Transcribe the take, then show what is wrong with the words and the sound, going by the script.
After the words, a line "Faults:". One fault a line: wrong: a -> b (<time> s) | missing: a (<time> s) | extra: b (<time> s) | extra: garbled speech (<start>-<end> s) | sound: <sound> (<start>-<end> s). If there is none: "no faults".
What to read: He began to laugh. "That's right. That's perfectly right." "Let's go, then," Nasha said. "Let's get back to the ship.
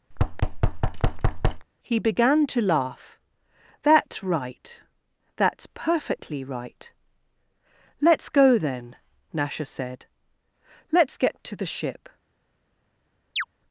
He began to laugh. "That's right. That's perfectly right." "Let's go, then," Nasha said. "Let's get to the ship.
Faults:
sound: thud (0.1-1.7 s)
missing: back (11.4 s)
sound: chirp (13.4-13.4 s)